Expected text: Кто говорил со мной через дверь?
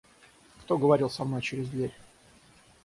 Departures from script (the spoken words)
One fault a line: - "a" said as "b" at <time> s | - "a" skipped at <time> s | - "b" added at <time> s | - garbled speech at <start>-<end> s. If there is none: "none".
none